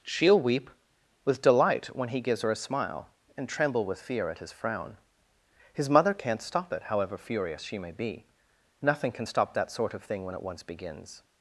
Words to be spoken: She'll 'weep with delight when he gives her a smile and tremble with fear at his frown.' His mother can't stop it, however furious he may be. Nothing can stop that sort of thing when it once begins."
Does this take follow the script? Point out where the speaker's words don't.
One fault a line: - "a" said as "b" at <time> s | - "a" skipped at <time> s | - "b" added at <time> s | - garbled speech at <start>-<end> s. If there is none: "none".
- "he" said as "she" at 7.6 s